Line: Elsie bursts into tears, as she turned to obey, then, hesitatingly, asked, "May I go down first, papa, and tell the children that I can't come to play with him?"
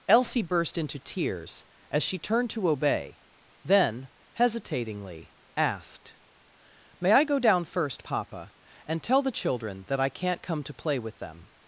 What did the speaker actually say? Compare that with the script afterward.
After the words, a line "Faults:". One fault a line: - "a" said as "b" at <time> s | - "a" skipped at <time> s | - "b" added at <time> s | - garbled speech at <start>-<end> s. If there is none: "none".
Elsie burst into tears, as she turned to obey, then, hesitatingly, asked, "May I go down first, papa, and tell the children that I can't come to play with them?"
Faults:
- "bursts" said as "burst" at 0.4 s
- "him" said as "them" at 11.2 s